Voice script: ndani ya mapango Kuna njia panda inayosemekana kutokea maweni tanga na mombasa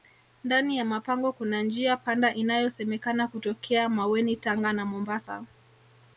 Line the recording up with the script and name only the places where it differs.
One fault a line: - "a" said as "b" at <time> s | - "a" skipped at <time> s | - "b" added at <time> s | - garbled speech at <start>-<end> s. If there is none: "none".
none